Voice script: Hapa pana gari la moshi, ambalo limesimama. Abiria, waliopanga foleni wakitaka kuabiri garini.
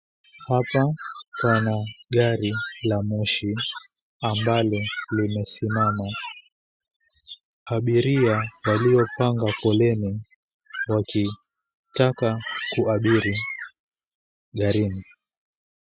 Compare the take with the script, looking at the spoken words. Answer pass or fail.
pass